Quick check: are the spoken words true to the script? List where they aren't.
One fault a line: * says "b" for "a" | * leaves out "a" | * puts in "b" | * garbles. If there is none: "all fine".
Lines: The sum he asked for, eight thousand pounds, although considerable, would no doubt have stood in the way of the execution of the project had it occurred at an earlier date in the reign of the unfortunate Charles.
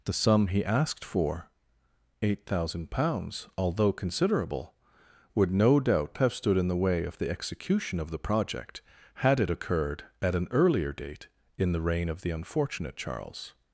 all fine